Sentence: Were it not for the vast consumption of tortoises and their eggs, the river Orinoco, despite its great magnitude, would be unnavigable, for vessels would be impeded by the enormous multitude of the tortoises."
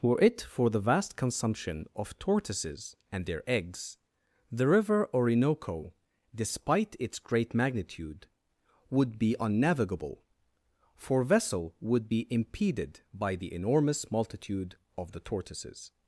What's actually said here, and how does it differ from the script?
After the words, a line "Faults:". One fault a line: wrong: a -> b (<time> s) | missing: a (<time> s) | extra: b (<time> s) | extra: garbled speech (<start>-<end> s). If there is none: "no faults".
Were it for the vast consumption of tortoises and their eggs, the river Orinoco, despite its great magnitude, would be unnavigable, for vessel would be impeded by the enormous multitude of the tortoises."
Faults:
missing: not (0.4 s)
wrong: vessels -> vessel (11.2 s)